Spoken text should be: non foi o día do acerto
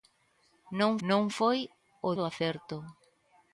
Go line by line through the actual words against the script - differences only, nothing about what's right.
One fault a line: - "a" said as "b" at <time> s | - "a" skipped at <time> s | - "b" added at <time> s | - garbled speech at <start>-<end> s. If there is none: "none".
- "non" added at 1.1 s
- "día" skipped at 2.1 s